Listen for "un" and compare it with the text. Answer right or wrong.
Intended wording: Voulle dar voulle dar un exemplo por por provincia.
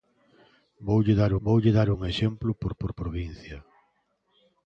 right